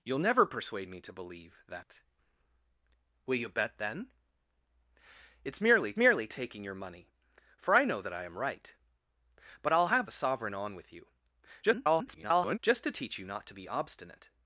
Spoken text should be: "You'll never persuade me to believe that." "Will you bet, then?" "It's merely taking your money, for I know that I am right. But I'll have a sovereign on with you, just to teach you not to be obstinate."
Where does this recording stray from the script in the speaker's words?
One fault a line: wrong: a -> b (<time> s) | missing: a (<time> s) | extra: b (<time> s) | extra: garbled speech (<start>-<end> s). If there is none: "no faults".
extra: merely (6.0 s)
extra: garbled speech (11.6-12.6 s)